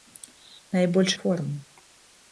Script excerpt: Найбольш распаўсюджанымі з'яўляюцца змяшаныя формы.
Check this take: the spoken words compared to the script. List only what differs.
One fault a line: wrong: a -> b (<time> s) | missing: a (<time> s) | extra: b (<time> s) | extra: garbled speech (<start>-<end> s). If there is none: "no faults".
missing: распаўсюджанымі з'яўляюцца змяшаныя (1.1 s)